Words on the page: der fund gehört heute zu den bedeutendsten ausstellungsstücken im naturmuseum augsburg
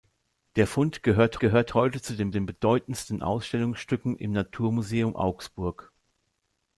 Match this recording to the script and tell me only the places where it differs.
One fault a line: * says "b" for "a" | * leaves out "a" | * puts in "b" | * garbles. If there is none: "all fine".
* puts in "gehört"
* puts in "den"